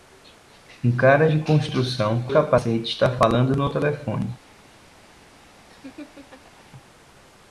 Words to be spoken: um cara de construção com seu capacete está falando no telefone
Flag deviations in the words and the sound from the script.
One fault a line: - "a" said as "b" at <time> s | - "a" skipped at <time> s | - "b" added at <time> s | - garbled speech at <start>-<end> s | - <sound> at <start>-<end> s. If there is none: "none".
- "com seu" skipped at 2.2 s
- laugh at 5.7-6.7 s